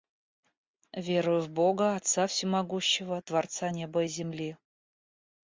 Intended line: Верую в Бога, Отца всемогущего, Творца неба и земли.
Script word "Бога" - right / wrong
right